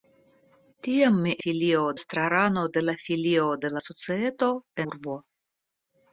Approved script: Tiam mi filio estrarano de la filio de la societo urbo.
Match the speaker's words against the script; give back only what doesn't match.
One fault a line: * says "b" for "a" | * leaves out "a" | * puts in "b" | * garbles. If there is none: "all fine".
all fine